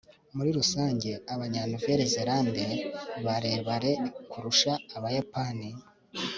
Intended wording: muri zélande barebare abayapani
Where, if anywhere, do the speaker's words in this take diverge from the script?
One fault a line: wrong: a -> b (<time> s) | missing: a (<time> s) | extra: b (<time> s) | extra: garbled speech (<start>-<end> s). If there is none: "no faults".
extra: rusange abanya nouvelle (0.6 s)
extra: kurusha (4.3 s)